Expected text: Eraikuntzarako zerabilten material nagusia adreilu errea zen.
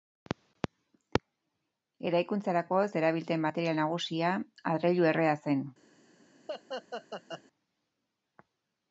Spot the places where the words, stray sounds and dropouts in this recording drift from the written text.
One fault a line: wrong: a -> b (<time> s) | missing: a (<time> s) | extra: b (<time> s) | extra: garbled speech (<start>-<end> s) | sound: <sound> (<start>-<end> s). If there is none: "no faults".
sound: laugh (6.5-7.4 s)